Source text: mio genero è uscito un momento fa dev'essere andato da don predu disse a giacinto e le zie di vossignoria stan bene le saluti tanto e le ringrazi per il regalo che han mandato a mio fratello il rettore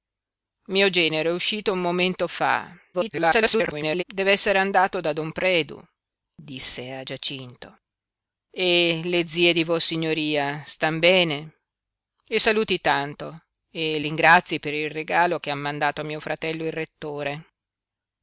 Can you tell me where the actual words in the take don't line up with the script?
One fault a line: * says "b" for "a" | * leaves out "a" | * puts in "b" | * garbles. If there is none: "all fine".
* garbles
* leaves out "le"